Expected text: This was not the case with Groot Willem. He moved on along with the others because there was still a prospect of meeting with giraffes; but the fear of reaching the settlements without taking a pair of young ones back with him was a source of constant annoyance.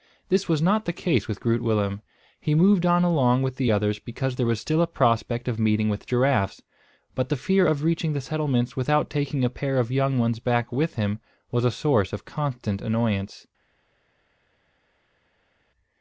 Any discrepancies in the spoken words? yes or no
no